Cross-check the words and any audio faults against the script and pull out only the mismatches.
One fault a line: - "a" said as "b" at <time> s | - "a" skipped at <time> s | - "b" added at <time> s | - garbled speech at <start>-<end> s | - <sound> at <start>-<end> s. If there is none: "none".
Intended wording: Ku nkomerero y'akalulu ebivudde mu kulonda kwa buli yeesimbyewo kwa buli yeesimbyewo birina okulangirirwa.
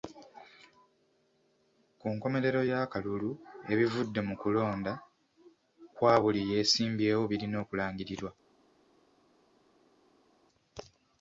- "kwa buli yeesimbyewo" skipped at 7.2 s